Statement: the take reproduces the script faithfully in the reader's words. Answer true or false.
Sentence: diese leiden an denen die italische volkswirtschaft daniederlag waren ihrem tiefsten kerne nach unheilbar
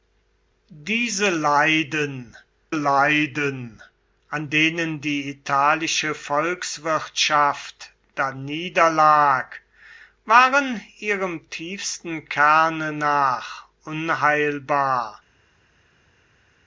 false